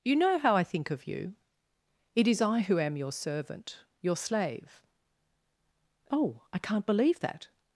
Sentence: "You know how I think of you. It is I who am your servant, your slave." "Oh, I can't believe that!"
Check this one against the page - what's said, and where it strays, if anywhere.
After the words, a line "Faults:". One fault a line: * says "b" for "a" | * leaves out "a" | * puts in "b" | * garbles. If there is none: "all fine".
"You know how I think of you. It is I who am your servant, your slave." "Oh, I can't believe that!"
Faults:
all fine